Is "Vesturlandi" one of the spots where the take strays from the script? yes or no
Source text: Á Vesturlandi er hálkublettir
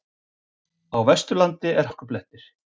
no